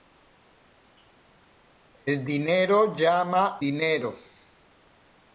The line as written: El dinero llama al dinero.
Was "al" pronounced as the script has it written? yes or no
no